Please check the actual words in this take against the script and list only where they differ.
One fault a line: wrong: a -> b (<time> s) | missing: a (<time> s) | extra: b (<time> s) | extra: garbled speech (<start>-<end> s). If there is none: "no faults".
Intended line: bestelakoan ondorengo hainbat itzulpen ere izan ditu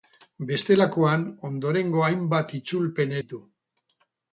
missing: ere izan (3.1 s)